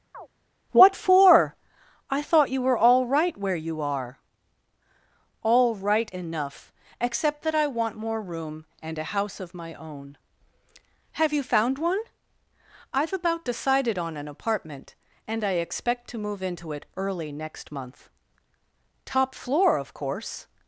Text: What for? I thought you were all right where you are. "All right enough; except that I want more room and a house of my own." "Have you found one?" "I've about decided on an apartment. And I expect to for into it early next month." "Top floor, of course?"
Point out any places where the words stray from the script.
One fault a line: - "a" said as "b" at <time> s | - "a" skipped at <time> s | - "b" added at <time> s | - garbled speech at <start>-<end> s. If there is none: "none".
- "for" said as "move" at 16.2 s